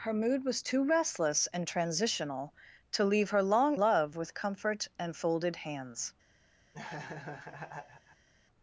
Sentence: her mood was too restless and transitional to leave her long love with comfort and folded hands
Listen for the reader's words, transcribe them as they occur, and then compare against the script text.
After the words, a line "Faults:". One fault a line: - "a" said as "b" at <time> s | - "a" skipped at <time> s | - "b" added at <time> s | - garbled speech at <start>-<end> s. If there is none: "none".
her mood was too restless and transitional to leave her long love with comfort and folded hands
Faults:
none